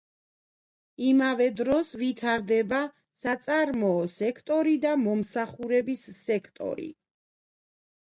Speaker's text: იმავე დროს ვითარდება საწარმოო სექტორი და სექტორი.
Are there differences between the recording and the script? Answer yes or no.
yes